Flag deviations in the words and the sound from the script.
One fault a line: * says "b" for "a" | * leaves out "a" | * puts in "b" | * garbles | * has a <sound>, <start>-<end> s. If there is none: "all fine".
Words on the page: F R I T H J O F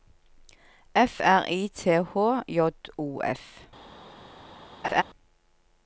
* has a laugh, 4.8-5.0 s